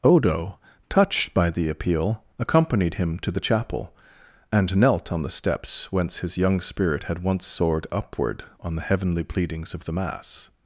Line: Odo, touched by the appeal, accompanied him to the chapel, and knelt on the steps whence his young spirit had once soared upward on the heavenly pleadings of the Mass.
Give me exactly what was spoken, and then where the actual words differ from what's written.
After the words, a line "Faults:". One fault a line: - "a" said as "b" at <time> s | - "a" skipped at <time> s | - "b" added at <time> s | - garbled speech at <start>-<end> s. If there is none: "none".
Odo, touched by the appeal, accompanied him to the chapel, and knelt on the steps whence his young spirit had once soared upward on the heavenly pleadings of the Mass.
Faults:
none